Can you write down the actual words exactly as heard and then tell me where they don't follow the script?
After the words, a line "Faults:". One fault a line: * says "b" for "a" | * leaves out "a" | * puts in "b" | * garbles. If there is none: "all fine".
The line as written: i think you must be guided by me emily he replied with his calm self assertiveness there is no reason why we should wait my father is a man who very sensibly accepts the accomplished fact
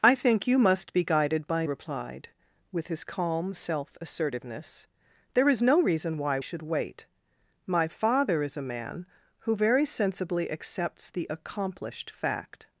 i think you must be guided by replied with his calm self assertiveness there is no reason why should wait my father is a man who very sensibly accepts the accomplished fact
Faults:
* leaves out "me emily he"
* leaves out "we"